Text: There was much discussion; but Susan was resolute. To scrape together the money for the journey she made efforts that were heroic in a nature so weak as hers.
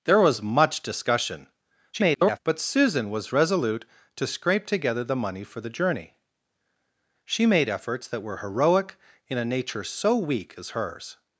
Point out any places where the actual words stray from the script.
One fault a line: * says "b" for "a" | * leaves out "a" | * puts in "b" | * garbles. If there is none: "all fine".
* garbles